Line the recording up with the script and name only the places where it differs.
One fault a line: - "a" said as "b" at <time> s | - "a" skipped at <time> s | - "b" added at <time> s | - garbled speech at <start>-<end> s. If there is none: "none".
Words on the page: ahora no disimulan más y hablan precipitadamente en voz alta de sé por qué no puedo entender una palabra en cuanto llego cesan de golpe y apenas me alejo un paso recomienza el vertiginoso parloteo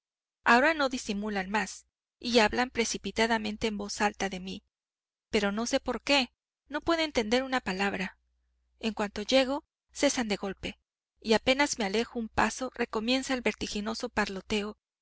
- "mí pero no" added at 4.4 s